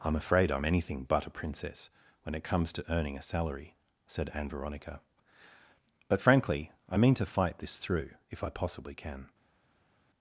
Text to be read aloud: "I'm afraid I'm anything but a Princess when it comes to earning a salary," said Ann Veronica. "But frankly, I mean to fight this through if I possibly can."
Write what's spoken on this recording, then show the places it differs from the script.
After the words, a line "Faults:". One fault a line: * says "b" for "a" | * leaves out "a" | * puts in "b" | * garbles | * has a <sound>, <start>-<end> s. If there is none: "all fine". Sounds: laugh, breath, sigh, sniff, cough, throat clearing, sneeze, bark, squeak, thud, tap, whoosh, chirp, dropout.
"I'm afraid I'm anything but a Princess when it comes to earning a salary," said Ann Veronica. "But frankly, I mean to fight this through if I possibly can."
Faults:
all fine